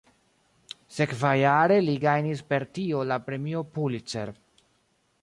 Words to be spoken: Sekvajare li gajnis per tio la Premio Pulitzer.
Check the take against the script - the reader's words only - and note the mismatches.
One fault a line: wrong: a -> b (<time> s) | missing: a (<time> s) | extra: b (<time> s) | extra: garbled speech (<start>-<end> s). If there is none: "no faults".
no faults